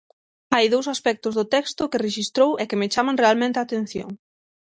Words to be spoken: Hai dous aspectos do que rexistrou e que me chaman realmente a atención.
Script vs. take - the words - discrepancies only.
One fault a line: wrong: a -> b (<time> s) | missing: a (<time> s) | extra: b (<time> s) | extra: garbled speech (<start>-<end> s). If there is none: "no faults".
extra: texto (1.6 s)